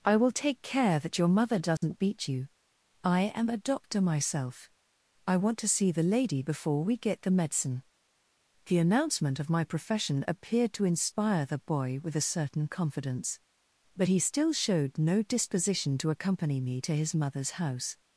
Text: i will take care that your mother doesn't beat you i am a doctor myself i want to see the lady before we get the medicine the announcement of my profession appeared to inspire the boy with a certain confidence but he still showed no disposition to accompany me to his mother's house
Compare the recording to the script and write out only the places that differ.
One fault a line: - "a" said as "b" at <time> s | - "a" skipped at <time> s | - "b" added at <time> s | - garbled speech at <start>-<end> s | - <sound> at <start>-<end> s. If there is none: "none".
- dropout at 1.8-1.8 s